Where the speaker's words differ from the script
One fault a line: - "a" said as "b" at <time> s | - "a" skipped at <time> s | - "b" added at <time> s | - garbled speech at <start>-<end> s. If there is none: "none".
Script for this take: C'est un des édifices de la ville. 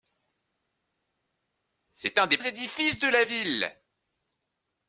none